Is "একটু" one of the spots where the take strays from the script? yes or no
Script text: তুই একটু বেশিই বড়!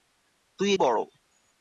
yes